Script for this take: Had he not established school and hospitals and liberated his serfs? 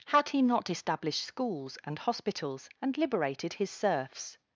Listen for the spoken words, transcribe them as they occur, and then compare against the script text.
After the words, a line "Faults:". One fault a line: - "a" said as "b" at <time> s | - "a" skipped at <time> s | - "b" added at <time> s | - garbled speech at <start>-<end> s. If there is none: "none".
Had he not established schools and hospitals and liberated his serfs?
Faults:
- "school" said as "schools" at 1.2 s